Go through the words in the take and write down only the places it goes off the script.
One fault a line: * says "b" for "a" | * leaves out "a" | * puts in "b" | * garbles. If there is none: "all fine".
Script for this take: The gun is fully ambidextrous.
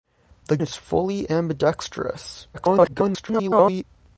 * leaves out "gun"
* garbles